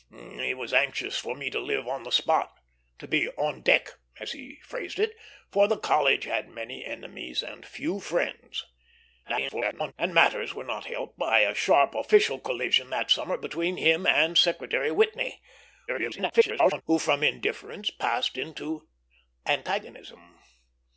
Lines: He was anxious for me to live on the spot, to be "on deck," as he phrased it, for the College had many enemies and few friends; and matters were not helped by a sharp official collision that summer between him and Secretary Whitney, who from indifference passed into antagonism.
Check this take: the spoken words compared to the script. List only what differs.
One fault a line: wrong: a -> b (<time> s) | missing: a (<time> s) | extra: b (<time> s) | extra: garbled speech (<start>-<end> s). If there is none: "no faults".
extra: garbled speech (9.2-9.9 s)
extra: garbled speech (15.9-16.8 s)